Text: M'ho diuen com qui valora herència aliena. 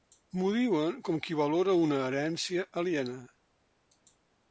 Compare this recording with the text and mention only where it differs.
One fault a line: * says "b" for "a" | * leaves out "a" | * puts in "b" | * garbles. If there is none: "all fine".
* puts in "una"